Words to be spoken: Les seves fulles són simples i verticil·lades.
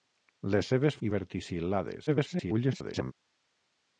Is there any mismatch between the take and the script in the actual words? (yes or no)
yes